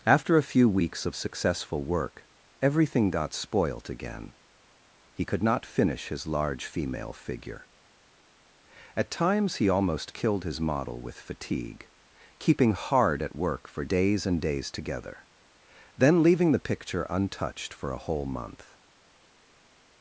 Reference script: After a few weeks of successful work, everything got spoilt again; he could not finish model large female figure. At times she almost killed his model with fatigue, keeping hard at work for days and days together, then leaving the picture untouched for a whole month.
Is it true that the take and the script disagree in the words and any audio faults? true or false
true